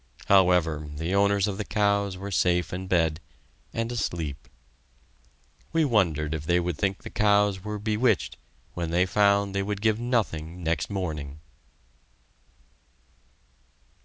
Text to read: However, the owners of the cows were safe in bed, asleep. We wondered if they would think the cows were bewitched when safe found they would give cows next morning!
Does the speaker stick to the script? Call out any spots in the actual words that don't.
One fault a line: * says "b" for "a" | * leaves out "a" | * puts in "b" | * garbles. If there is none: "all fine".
* puts in "and"
* says "they" for "safe"
* says "nothing" for "cows"